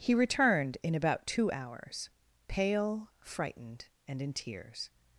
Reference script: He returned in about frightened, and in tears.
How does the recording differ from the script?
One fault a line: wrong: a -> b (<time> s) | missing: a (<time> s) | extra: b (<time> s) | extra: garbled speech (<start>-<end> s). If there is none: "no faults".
extra: two hours pale (1.3 s)